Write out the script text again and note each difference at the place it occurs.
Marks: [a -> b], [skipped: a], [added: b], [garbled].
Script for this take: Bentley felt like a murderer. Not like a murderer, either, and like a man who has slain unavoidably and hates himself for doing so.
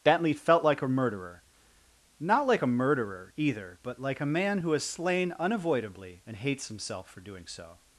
Bentley felt like a murderer. Not like a murderer, either, [and -> but] like a man who has slain unavoidably and hates himself for doing so.